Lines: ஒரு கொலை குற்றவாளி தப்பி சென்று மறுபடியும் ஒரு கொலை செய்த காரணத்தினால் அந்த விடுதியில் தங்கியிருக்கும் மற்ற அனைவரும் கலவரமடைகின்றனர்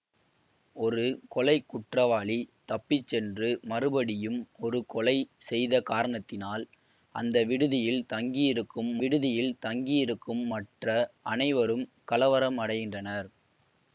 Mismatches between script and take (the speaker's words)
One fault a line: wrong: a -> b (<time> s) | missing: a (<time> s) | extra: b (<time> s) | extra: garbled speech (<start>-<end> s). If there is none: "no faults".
extra: விடுதியில் தங்கியிருக்கும் (9.0 s)